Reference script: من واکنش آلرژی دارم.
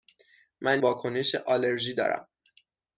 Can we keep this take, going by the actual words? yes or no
yes